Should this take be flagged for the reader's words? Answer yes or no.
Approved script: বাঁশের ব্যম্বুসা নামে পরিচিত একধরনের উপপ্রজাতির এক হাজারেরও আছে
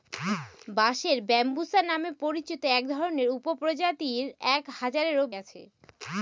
no